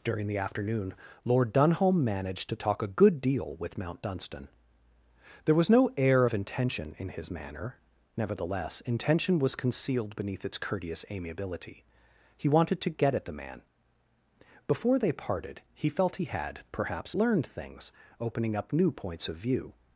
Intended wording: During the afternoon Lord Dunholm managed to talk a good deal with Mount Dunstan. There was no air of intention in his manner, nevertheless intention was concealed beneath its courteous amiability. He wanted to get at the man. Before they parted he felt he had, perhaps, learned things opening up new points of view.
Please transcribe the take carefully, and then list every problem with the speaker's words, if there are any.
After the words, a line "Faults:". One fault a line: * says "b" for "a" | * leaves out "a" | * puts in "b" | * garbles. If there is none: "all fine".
During the afternoon Lord Dunholm managed to talk a good deal with Mount Dunstan. There was no air of intention in his manner, nevertheless intention was concealed beneath its courteous amiability. He wanted to get at the man. Before they parted he felt he had, perhaps, learned things opening up new points of view.
Faults:
all fine